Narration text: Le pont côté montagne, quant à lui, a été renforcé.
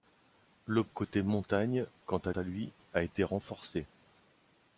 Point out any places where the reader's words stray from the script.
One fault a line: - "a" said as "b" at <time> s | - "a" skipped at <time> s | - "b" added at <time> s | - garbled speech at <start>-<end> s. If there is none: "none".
- "pont" skipped at 0.8 s
- "à" added at 2.3 s